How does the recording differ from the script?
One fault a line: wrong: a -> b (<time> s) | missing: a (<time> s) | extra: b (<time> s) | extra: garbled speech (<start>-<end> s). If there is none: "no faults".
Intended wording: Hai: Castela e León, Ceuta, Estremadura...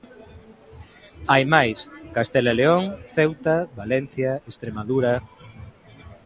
extra: máis (1.5 s)
extra: Valencia (3.8 s)